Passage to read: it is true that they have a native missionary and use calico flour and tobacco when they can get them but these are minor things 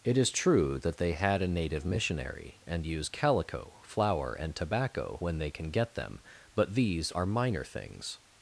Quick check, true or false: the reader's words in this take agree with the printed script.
false